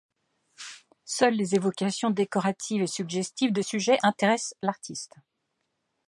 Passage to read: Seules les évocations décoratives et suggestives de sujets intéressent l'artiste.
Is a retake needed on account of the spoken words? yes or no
no